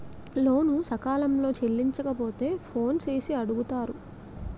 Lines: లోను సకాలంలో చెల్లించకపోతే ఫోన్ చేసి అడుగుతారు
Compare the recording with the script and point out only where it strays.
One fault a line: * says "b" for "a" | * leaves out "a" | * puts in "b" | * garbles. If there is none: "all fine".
all fine